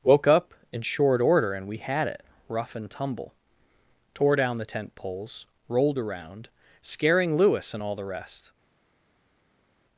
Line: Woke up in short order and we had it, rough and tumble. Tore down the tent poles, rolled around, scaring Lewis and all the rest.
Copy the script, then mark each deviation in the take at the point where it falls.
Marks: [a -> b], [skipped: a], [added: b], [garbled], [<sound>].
Woke up in short order and we had it, rough and tumble. Tore down the tent poles, rolled around, scaring Lewis and all the rest.